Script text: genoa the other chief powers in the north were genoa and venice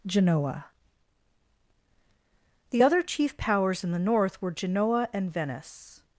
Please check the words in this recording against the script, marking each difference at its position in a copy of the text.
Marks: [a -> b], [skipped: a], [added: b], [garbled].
genoa the other chief powers in the north were genoa and venice